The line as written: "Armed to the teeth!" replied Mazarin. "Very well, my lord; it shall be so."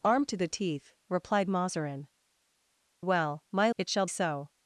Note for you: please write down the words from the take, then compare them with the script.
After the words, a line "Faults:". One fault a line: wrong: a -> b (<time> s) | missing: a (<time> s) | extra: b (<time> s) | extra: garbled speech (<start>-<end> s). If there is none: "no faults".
"Armed to the teeth!" replied Mazarin. "Well, my; it shall so."
Faults:
missing: Very (2.1 s)
missing: lord (3.7 s)
missing: be (4.1 s)